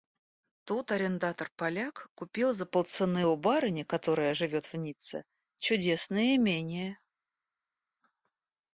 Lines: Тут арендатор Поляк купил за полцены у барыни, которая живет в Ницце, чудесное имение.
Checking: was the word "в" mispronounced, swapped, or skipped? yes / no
no